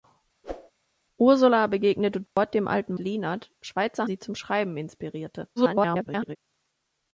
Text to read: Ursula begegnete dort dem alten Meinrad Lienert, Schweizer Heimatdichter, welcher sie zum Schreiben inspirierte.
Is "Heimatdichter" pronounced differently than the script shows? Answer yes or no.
yes